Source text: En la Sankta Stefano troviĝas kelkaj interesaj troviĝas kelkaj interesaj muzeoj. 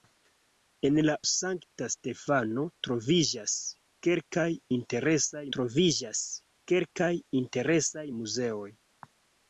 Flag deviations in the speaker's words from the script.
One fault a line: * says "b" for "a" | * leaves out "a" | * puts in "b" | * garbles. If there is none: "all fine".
all fine